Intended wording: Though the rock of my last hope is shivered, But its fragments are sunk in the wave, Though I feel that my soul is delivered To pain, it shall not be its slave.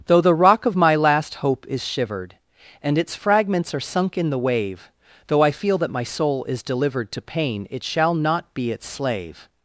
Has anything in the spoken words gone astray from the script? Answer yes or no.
yes